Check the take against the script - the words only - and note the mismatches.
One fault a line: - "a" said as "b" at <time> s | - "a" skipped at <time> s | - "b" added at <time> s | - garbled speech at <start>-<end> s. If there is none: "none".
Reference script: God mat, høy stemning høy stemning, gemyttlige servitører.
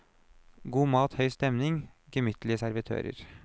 - "høy stemning" skipped at 1.8 s